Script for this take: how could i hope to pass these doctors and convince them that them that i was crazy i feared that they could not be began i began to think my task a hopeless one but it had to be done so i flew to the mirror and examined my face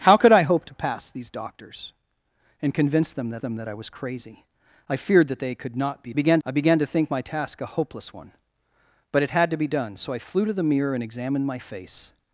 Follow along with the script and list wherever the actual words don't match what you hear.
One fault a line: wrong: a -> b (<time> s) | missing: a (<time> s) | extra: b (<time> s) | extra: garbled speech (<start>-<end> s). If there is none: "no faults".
no faults